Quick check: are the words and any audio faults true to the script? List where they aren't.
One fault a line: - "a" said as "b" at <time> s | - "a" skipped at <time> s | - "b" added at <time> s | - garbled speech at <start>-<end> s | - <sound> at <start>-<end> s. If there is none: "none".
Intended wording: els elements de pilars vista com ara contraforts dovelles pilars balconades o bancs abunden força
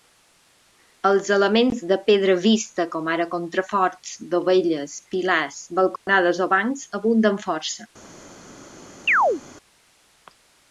- "pilars" said as "pedra" at 2.1 s
- dropout at 6.0-6.1 s
- chirp at 9.1-9.4 s